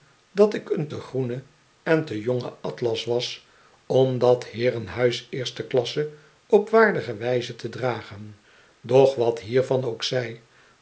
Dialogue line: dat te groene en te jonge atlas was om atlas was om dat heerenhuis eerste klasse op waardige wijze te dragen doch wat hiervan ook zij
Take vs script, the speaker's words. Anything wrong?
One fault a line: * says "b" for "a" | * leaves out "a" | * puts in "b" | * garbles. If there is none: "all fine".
* puts in "ik een"
* leaves out "atlas was om"